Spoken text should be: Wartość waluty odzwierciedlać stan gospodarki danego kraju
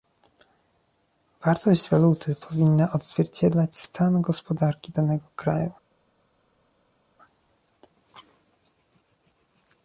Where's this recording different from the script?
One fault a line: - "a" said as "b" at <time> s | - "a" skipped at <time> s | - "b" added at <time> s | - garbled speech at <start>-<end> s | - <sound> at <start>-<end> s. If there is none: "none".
- "powinna" added at 2.4 s